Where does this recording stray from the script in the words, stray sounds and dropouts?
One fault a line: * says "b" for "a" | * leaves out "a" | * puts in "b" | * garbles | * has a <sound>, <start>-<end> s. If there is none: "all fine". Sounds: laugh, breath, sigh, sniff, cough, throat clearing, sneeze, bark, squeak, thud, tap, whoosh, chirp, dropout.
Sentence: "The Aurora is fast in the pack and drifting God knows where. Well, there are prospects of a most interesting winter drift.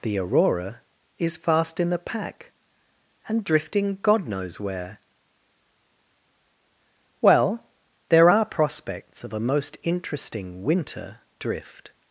all fine